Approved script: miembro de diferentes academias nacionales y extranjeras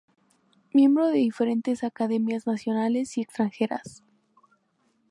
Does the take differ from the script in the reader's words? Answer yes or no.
no